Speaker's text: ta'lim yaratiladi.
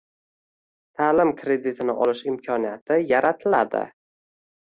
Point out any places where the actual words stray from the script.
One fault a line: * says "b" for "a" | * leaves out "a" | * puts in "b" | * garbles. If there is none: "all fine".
* puts in "kreditini olish imkoniyati"